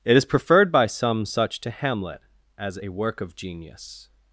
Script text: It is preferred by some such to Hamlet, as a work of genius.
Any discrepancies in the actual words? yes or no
no